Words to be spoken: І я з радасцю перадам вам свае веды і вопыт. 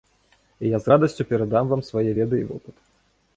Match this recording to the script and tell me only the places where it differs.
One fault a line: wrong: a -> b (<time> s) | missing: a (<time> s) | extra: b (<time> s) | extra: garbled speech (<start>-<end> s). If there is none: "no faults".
no faults